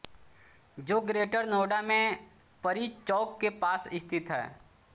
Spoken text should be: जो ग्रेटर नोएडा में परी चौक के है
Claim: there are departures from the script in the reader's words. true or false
true